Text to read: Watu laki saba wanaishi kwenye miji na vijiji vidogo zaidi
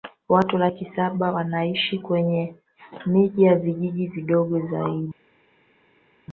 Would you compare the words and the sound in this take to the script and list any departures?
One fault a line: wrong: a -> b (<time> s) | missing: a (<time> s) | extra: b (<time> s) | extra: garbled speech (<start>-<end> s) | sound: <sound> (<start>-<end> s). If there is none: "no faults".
no faults